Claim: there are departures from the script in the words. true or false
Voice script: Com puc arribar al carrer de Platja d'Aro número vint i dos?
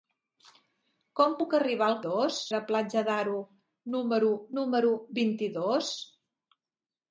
true